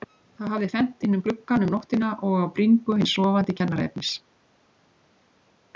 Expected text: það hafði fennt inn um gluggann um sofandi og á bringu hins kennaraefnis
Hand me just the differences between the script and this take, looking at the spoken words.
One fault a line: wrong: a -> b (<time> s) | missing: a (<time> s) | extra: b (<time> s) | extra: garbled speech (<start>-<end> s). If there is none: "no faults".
wrong: sofandi -> nóttina (1.8 s)
extra: sofandi (3.2 s)